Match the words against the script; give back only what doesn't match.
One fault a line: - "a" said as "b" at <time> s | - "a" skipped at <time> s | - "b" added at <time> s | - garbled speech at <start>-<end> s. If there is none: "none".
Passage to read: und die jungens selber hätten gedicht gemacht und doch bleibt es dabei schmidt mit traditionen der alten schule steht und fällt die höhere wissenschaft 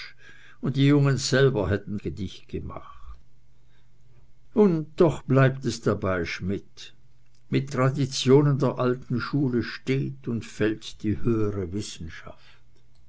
none